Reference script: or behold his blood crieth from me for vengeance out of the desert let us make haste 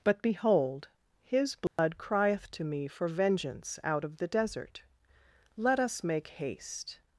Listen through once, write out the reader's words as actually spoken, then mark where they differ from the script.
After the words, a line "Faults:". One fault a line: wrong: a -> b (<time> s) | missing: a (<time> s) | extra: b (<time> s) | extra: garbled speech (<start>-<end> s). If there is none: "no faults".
but behold his blood crieth to me for vengeance out of the desert let us make haste
Faults:
wrong: or -> but (0.0 s)
wrong: from -> to (2.5 s)